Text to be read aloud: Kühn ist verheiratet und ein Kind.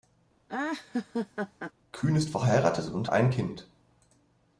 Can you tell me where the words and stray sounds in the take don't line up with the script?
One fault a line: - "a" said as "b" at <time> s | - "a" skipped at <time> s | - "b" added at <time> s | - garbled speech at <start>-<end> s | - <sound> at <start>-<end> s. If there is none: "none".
- laugh at 0.5-1.7 s